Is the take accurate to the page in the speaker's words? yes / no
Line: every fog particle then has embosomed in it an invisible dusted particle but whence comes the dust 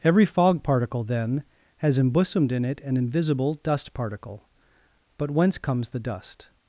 no